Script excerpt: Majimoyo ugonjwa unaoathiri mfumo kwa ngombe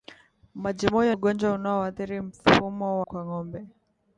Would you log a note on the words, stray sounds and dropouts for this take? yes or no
no